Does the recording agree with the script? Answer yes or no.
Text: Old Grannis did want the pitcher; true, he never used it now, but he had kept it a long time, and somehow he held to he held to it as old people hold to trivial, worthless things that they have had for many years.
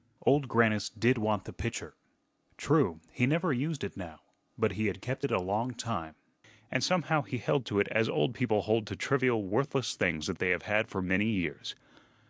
no